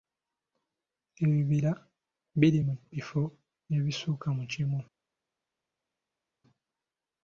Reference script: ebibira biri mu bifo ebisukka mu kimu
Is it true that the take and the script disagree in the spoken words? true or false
false